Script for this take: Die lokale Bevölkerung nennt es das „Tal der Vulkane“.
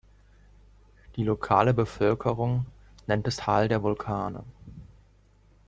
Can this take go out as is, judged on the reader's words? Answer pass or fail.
fail